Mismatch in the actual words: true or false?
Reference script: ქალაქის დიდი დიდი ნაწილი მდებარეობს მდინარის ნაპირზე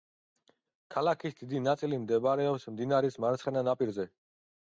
true